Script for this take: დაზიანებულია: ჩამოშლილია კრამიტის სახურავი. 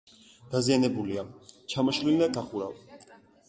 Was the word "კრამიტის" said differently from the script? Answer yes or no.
yes